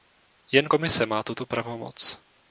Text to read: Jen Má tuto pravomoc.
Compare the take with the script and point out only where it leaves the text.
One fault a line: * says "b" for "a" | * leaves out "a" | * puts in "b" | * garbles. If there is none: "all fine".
* puts in "Komise"